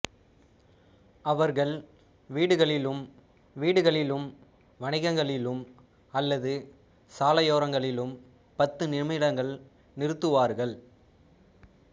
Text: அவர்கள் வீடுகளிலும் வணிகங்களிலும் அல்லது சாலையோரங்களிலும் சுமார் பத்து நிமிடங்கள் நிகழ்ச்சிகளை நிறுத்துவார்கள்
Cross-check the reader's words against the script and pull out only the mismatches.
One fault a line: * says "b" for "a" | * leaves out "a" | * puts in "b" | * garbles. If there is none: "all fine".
* puts in "வீடுகளிலும்"
* leaves out "சுமார்"
* leaves out "நிகழ்ச்சிகளை"